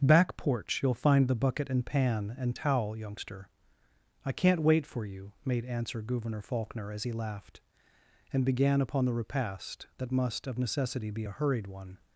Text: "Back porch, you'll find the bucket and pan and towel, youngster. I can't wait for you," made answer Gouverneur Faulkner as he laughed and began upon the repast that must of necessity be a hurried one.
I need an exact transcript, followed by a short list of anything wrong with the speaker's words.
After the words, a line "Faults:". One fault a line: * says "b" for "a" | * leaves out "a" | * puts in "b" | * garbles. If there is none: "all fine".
"Back porch, you'll find the bucket and pan and towel, youngster. I can't wait for you," made answer Gouverneur Faulkner as he laughed and began upon the repast that must of necessity be a hurried one.
Faults:
all fine